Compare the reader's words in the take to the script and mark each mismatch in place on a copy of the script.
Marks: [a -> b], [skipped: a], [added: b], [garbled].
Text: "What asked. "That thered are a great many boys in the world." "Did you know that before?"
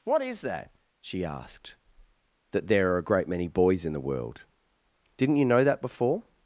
"What [added: is that she] asked. "That [thered -> there] are a great many boys in the world." ["Did -> Didn't] you know that before?"